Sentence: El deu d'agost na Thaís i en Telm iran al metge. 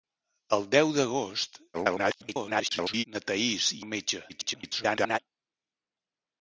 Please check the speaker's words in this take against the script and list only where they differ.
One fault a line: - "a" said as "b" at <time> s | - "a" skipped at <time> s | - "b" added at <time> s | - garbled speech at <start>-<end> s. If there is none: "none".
- garbled speech at 1.7-3.0 s
- "en Telm iran" skipped at 3.8 s
- garbled speech at 4.3-5.2 s